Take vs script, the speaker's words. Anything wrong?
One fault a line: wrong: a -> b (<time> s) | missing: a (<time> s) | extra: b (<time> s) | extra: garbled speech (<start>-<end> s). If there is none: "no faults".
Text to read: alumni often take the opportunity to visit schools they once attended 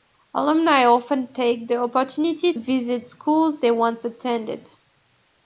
missing: to (2.5 s)